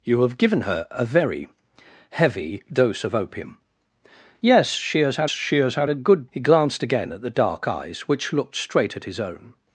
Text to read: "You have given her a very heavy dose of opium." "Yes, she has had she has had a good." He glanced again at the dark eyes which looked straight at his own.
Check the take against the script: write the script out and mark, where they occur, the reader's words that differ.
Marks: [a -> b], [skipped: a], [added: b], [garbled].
"You have given her a very heavy dose of opium." "Yes, she has had she has had a good." He glanced again at the dark eyes which looked straight at his own.